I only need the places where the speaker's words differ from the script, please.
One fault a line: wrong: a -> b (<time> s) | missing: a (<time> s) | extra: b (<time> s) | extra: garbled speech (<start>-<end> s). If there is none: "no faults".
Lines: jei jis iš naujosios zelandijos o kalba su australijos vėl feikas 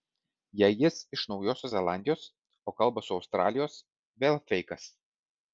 no faults